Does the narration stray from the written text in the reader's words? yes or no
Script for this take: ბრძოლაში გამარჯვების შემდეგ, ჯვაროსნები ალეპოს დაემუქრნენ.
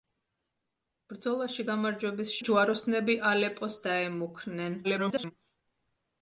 yes